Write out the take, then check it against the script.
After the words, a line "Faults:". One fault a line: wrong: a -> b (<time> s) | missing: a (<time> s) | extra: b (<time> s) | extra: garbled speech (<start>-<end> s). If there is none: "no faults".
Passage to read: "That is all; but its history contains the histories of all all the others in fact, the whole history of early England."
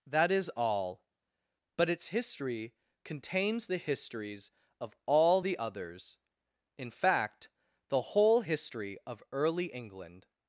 "That is all; but its history contains the histories of all the others in fact, the whole history of early England."
Faults:
missing: all (5.4 s)